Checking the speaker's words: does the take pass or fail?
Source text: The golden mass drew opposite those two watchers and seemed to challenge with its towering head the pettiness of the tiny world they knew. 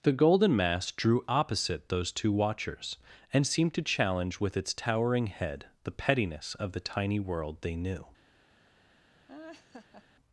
pass